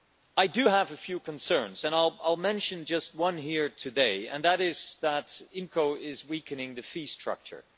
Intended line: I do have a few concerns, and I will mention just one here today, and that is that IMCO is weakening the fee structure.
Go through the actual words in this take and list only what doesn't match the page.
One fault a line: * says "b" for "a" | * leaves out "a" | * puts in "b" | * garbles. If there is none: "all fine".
all fine